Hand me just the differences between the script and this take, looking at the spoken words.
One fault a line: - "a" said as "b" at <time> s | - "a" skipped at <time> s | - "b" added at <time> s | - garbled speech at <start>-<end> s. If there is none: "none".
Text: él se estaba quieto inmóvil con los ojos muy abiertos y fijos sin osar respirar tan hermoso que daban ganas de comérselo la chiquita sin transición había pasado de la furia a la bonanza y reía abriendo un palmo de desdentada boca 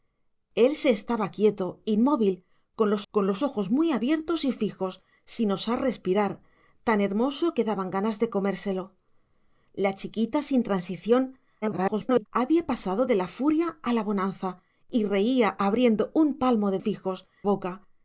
- "con los" added at 3.1 s
- garbled speech at 11.6-12.3 s
- "desdentada" said as "fijos" at 16.8 s